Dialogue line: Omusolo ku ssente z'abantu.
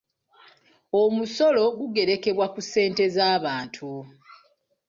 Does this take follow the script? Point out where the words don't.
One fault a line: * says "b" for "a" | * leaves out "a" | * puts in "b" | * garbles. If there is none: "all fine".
* puts in "gugerekebwa"